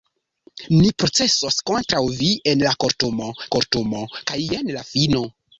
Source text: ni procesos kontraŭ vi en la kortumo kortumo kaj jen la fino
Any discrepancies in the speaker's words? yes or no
no